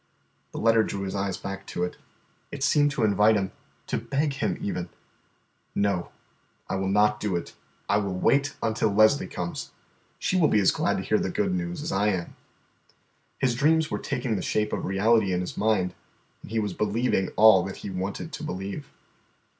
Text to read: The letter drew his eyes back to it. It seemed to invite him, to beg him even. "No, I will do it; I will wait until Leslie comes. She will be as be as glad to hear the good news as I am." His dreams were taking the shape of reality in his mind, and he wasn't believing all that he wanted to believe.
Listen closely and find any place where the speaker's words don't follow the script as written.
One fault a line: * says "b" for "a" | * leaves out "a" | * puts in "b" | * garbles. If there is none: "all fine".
* puts in "not"
* leaves out "be as"
* says "was" for "wasn't"